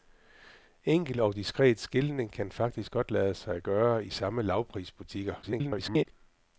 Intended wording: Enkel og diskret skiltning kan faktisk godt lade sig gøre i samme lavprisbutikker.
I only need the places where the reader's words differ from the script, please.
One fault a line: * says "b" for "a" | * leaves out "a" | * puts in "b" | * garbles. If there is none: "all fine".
* garbles